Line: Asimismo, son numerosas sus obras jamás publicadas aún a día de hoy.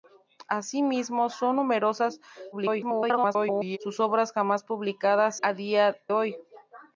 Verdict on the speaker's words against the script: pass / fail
fail